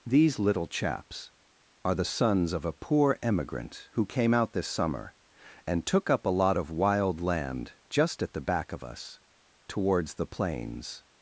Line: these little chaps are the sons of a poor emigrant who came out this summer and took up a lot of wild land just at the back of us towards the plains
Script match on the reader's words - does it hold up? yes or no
yes